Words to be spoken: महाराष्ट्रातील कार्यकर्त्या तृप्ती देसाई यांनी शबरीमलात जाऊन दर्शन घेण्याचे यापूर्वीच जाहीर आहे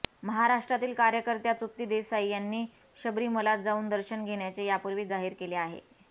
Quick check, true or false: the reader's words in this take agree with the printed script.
false